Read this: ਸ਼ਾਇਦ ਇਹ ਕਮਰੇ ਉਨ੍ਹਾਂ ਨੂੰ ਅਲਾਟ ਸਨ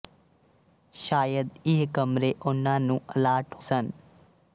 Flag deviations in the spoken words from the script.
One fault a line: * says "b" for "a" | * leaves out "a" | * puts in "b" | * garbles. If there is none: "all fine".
all fine